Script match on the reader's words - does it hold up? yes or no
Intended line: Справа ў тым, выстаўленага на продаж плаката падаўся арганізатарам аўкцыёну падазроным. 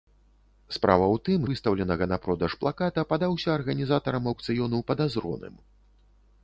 yes